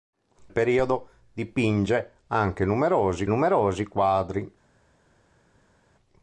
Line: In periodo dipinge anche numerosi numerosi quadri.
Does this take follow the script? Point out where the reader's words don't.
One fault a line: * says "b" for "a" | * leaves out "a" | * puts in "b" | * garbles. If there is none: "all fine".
all fine